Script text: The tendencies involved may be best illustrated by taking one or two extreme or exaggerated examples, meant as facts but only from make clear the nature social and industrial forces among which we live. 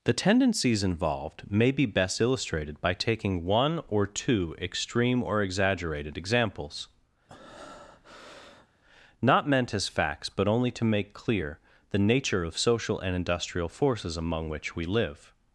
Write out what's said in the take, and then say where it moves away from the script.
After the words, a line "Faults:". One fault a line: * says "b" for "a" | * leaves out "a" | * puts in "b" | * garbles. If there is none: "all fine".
The tendencies involved may be best illustrated by taking one or two extreme or exaggerated examples, not meant as facts but only to make clear the nature of social and industrial forces among which we live.
Faults:
* puts in "not"
* says "to" for "from"
* puts in "of"